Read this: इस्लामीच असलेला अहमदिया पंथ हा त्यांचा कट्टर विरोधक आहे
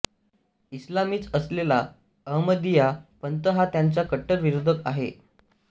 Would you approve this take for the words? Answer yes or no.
yes